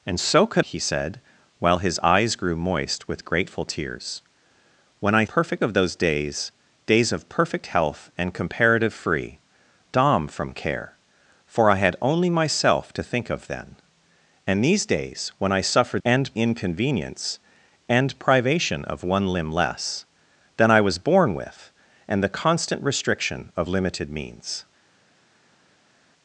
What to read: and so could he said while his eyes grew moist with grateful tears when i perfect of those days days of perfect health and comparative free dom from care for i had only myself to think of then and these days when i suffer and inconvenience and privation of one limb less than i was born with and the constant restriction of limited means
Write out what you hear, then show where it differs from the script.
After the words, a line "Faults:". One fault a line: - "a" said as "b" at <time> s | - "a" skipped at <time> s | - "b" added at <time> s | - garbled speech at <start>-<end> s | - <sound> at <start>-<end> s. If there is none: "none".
and so could he said while his eyes grew moist with grateful tears when i perfect of those days days of perfect health and comparative free dom from care for i had only myself to think of then and these days when i suffer and inconvenience and privation of one limb less than i was born with and the constant restriction of limited means
Faults:
none